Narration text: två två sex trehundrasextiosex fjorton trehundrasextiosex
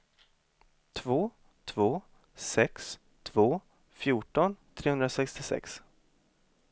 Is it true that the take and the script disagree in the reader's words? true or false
true